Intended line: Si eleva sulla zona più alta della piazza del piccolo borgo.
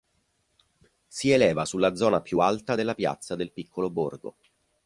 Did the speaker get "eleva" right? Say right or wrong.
right